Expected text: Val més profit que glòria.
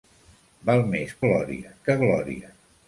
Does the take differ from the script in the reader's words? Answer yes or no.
yes